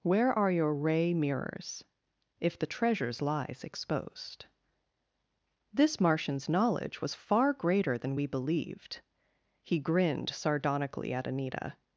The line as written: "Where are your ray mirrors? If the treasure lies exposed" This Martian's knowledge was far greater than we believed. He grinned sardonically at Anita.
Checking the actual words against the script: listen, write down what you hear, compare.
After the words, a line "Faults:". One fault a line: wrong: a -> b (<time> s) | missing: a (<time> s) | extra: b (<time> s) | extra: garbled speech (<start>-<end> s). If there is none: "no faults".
"Where are your ray mirrors? If the treasures lies exposed" This Martian's knowledge was far greater than we believed. He grinned sardonically at Anita.
Faults:
wrong: treasure -> treasures (2.6 s)